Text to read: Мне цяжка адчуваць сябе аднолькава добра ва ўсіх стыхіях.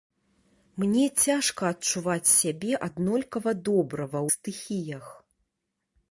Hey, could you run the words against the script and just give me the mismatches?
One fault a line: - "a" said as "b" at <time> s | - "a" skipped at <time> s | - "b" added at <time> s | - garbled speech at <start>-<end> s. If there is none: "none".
- "ўсіх" skipped at 4.2 s